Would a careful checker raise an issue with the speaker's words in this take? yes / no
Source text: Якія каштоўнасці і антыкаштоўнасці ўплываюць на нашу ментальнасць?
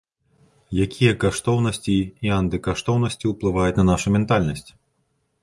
no